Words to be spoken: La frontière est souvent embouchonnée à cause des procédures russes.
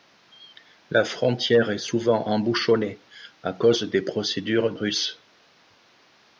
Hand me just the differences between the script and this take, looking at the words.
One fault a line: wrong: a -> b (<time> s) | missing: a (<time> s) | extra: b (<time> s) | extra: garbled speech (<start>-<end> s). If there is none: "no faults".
no faults